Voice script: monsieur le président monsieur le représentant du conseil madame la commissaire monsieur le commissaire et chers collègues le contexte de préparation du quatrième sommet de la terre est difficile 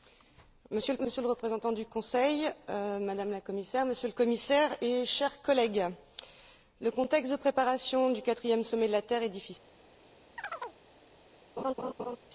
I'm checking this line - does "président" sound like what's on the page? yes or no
no